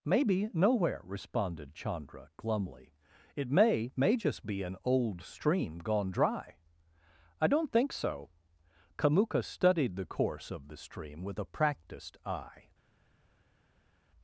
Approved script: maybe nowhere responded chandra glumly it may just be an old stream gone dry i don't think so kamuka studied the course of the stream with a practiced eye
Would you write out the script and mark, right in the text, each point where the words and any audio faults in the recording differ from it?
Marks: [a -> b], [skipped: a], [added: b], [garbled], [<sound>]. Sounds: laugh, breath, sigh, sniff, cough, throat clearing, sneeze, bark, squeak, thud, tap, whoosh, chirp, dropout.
maybe nowhere responded chandra glumly it may [added: may] just be an old stream gone dry i don't think so kamuka studied the course of the stream with a practiced eye